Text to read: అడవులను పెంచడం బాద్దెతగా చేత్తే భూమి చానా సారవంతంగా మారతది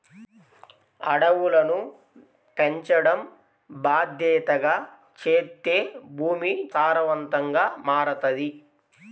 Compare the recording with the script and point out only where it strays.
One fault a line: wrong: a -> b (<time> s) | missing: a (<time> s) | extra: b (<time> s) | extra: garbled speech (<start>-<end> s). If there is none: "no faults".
missing: చానా (6.5 s)